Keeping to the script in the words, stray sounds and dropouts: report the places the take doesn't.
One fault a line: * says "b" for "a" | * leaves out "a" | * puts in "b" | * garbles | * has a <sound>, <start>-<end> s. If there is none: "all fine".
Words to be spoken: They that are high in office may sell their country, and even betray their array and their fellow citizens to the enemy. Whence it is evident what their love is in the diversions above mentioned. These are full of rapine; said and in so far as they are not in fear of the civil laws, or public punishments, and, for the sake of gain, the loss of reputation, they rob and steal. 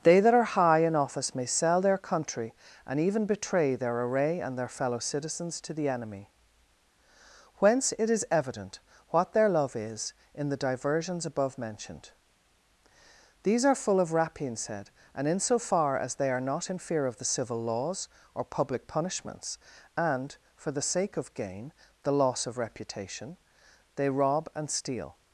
all fine